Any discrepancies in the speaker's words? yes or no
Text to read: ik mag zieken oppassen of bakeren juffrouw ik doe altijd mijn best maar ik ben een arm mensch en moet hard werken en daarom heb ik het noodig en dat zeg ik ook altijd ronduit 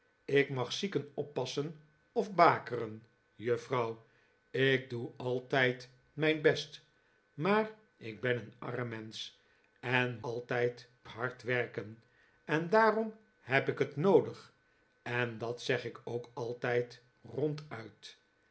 yes